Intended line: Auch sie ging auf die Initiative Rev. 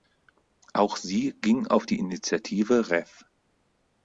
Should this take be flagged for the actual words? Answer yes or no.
no